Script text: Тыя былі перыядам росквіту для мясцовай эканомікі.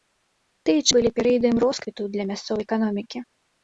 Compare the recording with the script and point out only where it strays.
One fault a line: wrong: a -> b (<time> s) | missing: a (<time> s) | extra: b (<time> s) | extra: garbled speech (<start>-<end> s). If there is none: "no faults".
no faults